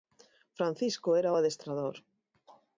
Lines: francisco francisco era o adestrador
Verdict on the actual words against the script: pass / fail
fail